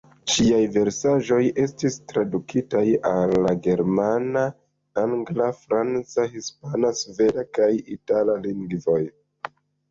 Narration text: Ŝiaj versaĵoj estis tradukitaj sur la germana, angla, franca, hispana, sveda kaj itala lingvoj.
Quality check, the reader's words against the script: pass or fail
fail